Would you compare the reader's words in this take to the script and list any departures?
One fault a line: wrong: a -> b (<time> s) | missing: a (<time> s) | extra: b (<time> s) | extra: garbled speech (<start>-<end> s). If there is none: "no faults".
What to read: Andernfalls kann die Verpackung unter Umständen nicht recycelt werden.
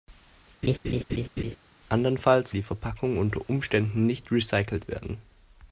missing: kann (2.6 s)